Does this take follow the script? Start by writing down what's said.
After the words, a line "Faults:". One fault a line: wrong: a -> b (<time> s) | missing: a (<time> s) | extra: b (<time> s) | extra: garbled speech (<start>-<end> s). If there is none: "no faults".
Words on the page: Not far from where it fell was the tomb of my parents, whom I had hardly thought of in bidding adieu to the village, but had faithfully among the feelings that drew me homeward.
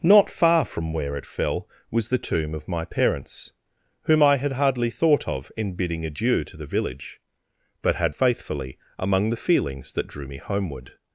Not far from where it fell was the tomb of my parents, whom I had hardly thought of in bidding adieu to the village, but had faithfully among the feelings that drew me homeward.
Faults:
no faults